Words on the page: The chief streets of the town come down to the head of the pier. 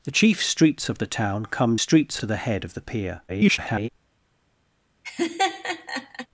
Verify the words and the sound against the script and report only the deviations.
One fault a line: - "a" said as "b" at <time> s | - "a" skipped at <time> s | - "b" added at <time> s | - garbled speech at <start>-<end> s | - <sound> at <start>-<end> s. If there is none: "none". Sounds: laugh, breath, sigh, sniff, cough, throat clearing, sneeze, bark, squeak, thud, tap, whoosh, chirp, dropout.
- "down" said as "streets" at 1.7 s
- garbled speech at 3.3-3.9 s
- laugh at 5.0-6.3 s